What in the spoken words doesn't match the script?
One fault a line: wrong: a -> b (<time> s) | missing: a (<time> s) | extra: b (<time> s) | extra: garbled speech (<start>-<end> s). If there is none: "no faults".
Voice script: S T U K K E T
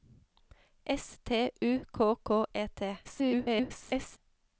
extra: garbled speech (3.0-4.2 s)